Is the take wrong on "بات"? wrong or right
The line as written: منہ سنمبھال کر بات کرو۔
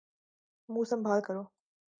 wrong